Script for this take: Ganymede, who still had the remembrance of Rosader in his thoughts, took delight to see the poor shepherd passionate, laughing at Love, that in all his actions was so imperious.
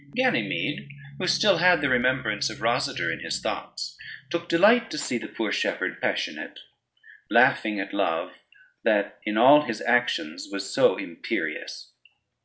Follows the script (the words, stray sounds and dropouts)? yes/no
yes